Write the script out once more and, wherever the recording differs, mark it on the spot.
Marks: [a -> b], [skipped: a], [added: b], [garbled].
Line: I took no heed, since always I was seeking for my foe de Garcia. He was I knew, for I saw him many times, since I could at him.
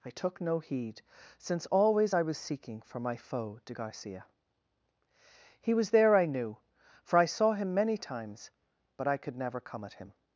I took no heed, since always I was seeking for my foe de Garcia. He was [added: there] I knew, for I saw him many times, [since -> but] I could [added: never come] at him.